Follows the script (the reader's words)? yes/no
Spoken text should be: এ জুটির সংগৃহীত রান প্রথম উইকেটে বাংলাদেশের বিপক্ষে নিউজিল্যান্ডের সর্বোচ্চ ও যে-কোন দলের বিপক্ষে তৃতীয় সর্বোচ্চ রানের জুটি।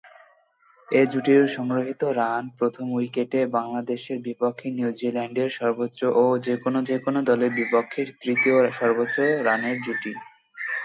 no